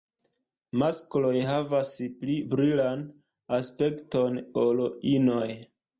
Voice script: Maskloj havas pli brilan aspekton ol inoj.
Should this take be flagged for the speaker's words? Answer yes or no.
no